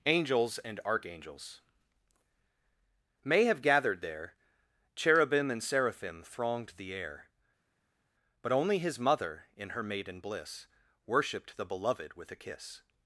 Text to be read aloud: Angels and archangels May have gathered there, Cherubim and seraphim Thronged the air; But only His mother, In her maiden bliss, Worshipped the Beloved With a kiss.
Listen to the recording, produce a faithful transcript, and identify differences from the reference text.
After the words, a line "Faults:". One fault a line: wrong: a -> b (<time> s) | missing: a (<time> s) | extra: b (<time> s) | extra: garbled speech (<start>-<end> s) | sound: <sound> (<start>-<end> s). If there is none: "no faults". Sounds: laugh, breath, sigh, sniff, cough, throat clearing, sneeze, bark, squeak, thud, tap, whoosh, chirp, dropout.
Angels and archangels May have gathered there, Cherubim and seraphim Thronged the air; But only His mother, In her maiden bliss, Worshipped the Beloved With a kiss.
Faults:
no faults